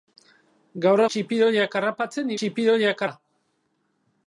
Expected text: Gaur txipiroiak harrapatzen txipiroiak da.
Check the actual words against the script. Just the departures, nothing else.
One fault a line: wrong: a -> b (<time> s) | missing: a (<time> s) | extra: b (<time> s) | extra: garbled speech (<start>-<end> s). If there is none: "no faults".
no faults